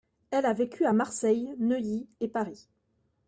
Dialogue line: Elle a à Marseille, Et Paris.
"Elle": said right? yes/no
yes